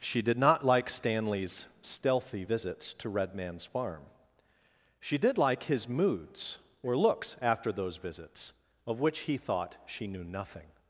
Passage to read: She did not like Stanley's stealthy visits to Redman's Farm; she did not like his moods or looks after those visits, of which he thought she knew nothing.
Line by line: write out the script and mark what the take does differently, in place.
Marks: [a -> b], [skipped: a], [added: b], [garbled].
She did not like Stanley's stealthy visits to Redman's Farm; she did [skipped: not] like his moods or looks after those visits, of which he thought she knew nothing.